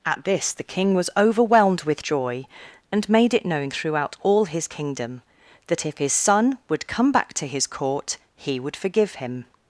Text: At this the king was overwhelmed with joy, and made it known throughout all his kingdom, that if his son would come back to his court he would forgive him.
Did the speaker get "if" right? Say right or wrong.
right